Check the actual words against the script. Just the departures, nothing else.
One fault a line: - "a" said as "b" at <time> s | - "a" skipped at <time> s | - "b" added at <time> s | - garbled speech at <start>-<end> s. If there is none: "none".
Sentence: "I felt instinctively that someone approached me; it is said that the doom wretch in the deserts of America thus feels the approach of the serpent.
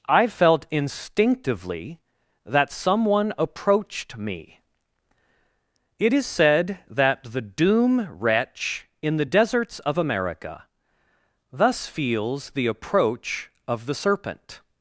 none